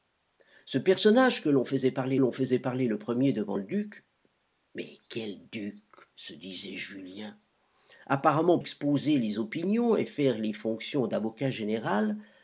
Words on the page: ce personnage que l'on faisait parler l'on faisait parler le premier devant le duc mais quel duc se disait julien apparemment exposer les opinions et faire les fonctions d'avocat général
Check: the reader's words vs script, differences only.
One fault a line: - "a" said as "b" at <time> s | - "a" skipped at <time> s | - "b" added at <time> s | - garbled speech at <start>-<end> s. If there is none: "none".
none